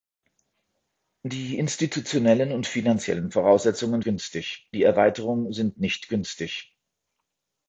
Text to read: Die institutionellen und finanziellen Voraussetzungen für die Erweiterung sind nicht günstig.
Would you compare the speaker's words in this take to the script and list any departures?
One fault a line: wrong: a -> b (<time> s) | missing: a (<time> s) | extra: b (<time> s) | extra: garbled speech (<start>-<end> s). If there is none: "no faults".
wrong: für -> günstig (4.0 s)